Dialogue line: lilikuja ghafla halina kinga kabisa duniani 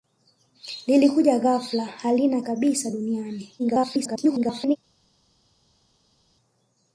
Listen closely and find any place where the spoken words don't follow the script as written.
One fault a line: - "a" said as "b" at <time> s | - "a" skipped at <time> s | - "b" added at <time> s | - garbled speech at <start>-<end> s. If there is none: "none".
- "kinga" skipped at 2.4 s
- garbled speech at 3.6-4.8 s